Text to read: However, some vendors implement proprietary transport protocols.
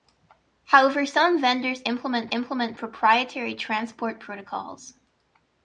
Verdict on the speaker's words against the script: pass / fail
fail